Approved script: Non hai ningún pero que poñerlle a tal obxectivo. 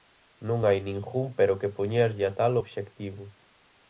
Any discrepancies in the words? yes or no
no